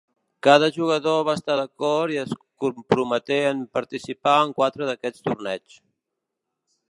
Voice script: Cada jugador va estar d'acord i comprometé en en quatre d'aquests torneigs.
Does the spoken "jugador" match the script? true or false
true